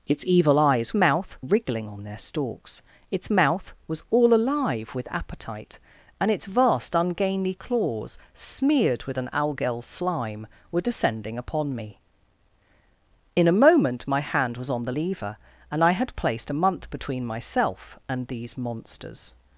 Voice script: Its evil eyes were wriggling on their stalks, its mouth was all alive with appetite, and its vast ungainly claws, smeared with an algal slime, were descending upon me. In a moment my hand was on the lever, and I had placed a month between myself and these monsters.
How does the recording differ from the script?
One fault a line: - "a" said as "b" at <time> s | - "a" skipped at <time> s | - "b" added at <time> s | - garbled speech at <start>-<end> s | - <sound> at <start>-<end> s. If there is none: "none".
- "were" said as "mouth" at 0.9 s